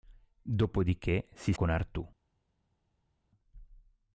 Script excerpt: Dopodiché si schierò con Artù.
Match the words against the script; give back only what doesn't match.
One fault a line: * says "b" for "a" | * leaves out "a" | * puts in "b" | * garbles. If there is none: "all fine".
* leaves out "schierò"